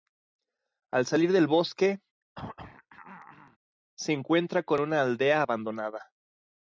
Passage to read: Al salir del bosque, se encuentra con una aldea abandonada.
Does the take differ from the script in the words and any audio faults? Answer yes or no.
yes